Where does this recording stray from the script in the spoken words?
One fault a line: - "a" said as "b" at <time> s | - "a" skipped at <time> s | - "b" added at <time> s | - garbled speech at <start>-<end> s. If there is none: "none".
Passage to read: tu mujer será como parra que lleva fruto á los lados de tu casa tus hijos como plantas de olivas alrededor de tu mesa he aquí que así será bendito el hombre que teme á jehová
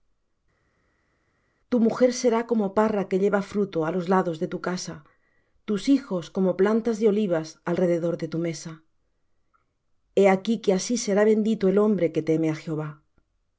none